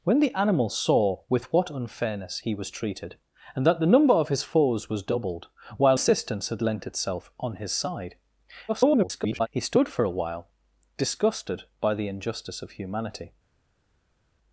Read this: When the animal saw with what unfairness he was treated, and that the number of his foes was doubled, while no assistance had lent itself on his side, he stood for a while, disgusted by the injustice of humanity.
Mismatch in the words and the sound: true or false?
true